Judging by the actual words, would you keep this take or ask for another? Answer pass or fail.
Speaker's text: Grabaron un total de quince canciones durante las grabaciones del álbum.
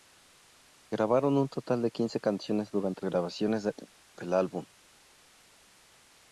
fail